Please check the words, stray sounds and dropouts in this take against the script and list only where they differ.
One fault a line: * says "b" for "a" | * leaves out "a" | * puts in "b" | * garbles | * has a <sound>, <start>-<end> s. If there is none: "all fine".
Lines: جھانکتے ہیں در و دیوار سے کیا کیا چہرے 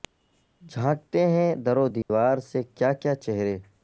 * has a dropout, 2.0-2.1 s